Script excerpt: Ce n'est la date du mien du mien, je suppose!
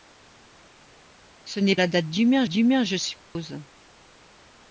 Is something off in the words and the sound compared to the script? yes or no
yes